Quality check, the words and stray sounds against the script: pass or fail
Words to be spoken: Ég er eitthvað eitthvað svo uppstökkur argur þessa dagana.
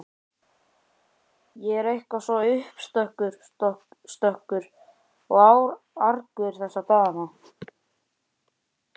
fail